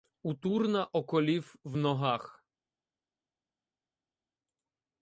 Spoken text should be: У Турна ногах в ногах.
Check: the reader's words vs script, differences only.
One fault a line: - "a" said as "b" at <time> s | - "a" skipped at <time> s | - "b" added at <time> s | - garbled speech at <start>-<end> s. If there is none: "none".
- "ногах" said as "околів" at 0.8 s